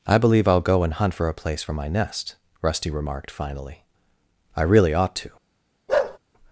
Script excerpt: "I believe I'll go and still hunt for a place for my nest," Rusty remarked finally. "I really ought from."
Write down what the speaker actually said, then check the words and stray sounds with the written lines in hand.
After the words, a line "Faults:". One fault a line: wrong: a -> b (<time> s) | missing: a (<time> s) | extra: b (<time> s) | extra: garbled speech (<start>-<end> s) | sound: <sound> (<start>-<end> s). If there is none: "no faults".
"I believe I'll go and hunt for a place for my nest," Rusty remarked finally. "I really ought to."
Faults:
missing: still (0.9 s)
wrong: from -> to (5.2 s)
sound: bark (5.9-6.2 s)